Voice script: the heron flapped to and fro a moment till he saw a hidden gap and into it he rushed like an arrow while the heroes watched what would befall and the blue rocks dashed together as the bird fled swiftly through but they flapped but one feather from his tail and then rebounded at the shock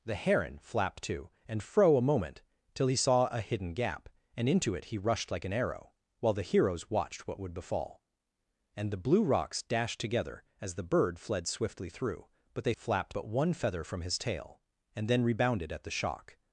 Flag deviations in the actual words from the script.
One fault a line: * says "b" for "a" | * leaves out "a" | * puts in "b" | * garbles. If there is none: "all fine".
all fine